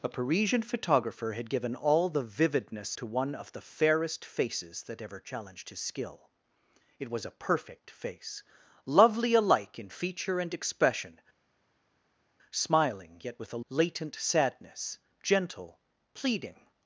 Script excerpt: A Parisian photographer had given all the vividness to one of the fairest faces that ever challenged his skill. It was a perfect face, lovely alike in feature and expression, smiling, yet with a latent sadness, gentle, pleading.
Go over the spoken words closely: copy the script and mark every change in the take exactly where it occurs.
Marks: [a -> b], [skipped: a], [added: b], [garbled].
A Parisian photographer had given all the vividness to one of the fairest faces that ever challenged his skill. It was a perfect face, lovely alike in feature and expression, smiling, yet with a latent sadness, gentle, pleading.